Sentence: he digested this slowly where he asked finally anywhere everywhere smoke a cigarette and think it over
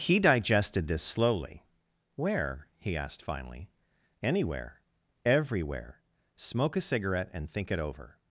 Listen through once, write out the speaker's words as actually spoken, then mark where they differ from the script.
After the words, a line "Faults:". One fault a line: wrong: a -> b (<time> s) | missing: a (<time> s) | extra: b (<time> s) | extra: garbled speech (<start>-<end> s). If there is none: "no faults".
he digested this slowly where he asked finally anywhere everywhere smoke a cigarette and think it over
Faults:
no faults